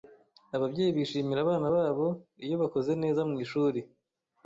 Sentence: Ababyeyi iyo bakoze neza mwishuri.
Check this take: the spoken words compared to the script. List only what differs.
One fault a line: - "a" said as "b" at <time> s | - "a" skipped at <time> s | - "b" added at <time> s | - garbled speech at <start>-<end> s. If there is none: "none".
- "bishimira abana babo" added at 1.0 s